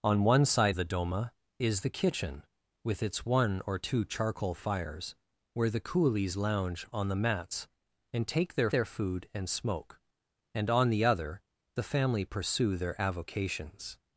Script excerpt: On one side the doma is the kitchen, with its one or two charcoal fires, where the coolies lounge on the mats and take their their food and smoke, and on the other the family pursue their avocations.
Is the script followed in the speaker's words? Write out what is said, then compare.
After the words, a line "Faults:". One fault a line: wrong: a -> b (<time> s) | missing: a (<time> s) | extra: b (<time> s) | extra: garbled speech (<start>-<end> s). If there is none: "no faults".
On one side the doma is the kitchen, with its one or two charcoal fires, where the coolies lounge on the mats and take their their food and smoke, and on the other the family pursue their avocations.
Faults:
no faults